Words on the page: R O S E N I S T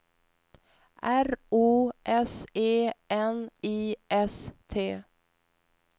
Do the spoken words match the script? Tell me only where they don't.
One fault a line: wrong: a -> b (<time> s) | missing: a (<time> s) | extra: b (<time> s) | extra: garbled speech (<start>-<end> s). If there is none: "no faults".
no faults